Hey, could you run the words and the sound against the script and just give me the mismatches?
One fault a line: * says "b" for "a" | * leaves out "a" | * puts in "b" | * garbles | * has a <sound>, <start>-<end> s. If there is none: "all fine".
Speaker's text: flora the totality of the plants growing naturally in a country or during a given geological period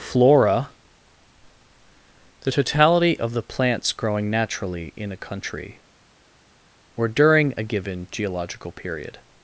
all fine